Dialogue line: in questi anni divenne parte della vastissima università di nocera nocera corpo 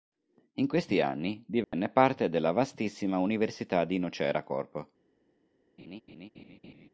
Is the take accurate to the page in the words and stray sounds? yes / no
no